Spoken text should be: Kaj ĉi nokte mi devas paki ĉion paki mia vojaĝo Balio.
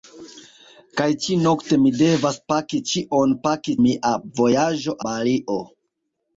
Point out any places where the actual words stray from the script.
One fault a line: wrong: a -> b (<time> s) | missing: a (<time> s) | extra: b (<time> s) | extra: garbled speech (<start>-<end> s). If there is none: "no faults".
no faults